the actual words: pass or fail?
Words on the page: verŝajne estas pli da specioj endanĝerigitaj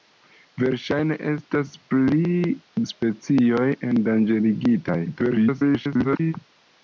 fail